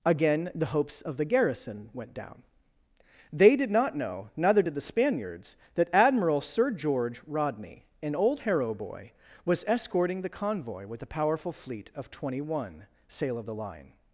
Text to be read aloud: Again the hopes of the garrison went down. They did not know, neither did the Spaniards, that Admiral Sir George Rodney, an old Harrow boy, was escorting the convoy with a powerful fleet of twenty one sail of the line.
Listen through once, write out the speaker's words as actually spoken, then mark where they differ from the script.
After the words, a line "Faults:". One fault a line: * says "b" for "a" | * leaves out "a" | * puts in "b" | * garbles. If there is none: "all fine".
Again the hopes of the garrison went down. They did not know, neither did the Spaniards, that Admiral Sir George Rodney, an old Harrow boy, was escorting the convoy with a powerful fleet of twenty one sail of the line.
Faults:
all fine